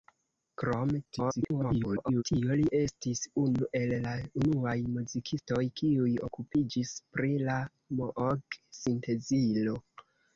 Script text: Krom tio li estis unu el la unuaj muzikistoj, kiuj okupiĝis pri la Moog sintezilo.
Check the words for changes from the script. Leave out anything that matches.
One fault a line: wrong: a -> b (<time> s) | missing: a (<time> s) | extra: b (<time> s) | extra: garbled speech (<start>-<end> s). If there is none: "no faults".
extra: garbled speech (1.0-2.2 s)